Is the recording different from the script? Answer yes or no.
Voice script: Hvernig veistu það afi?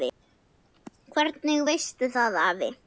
no